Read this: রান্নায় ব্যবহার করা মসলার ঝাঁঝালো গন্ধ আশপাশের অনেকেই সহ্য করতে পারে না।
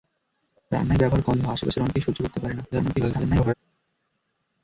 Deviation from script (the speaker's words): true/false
true